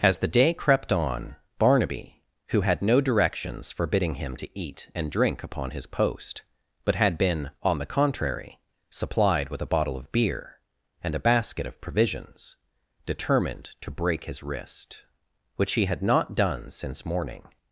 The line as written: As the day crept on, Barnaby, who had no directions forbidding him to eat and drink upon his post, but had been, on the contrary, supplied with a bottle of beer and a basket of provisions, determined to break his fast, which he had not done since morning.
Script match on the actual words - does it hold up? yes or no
no